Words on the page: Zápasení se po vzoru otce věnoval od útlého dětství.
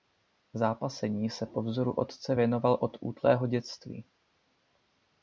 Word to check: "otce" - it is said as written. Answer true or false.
true